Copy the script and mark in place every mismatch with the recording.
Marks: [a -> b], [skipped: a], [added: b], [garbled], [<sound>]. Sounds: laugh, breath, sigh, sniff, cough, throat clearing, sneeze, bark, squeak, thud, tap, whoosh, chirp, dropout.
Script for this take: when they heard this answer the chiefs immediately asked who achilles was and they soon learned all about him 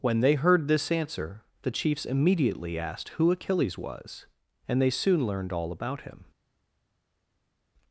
when they heard this answer the chiefs immediately asked who achilles was and they soon learned all about him